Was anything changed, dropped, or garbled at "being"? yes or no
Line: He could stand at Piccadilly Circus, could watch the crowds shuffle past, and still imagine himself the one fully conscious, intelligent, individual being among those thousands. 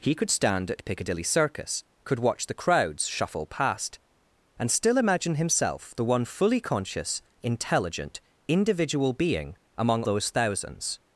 no